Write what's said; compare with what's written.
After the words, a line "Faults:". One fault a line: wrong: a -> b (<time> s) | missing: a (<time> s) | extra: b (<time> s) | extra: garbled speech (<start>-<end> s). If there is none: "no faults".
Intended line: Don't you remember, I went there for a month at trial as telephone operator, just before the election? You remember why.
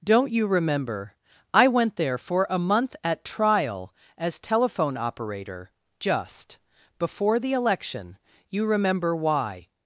Don't you remember, I went there for a month at trial as telephone operator, just before the election? You remember why.
Faults:
no faults